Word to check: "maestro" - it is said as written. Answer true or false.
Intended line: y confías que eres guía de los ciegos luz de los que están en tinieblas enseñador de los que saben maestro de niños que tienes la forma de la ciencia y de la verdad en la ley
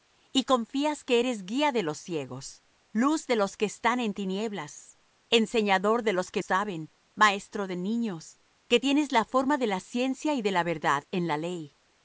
true